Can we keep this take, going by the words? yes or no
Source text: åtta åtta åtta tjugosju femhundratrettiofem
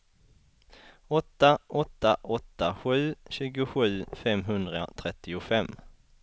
no